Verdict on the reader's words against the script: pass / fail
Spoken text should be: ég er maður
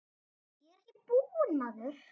fail